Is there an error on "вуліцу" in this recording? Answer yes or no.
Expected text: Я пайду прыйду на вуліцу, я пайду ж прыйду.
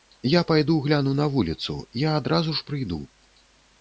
no